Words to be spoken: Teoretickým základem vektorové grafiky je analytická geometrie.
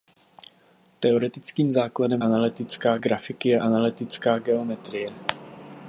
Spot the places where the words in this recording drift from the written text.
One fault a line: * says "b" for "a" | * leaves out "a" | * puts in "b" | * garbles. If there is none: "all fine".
* says "analytická" for "vektorové"